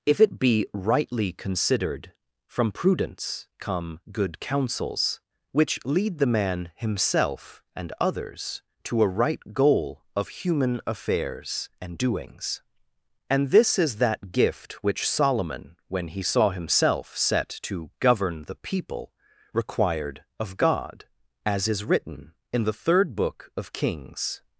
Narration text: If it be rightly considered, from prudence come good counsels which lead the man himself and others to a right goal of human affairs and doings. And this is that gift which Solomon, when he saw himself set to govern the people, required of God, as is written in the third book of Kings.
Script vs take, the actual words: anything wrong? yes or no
no